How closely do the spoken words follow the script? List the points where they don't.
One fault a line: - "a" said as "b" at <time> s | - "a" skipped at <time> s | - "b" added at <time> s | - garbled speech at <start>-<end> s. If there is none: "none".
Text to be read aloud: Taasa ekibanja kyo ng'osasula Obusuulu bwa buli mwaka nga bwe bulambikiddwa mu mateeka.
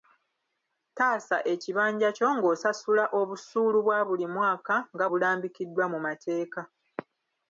- "bwe" skipped at 5.0 s